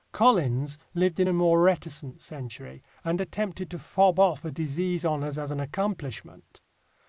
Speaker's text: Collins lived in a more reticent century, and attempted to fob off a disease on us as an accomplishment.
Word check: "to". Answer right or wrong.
right